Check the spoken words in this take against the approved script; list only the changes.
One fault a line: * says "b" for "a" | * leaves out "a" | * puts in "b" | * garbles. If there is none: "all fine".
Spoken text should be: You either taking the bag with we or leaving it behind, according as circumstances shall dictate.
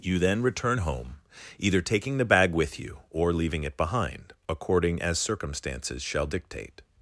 * puts in "then return home"
* says "you" for "we"